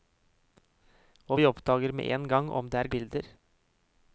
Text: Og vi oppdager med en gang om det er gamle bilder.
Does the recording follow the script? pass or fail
fail